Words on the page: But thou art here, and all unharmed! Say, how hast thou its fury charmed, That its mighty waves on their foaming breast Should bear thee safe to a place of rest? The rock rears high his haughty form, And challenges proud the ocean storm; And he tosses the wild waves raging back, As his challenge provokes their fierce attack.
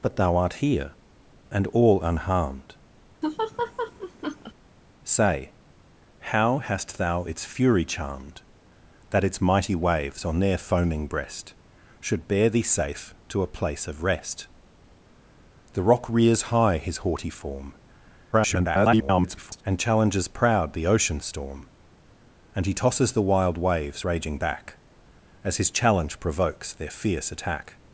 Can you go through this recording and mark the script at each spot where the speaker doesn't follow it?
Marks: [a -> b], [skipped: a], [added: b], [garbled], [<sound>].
But thou art here, and all unharmed! [laugh] Say, how hast thou its fury charmed, That its mighty waves on their foaming breast Should bear thee safe to a place of rest? The rock rears high his haughty form, [garbled] And challenges proud the ocean storm; And he tosses the wild waves raging back, As his challenge provokes their fierce attack.